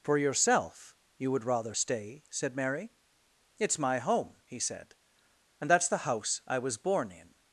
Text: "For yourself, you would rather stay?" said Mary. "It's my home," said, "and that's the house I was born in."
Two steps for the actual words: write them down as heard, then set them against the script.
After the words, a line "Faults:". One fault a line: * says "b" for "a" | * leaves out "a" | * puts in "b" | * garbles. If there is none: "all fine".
"For yourself, you would rather stay?" said Mary. "It's my home," he said, "and that's the house I was born in."
Faults:
* puts in "he"